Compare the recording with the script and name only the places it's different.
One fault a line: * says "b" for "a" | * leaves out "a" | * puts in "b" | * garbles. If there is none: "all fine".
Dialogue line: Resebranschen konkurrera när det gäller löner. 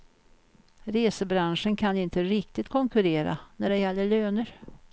* puts in "kan inte riktigt"